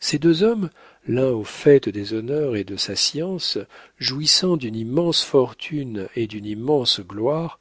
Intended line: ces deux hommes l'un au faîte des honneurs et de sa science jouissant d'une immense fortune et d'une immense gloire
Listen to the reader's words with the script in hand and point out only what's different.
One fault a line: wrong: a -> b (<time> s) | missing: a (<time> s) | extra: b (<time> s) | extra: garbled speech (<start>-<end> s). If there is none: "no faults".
no faults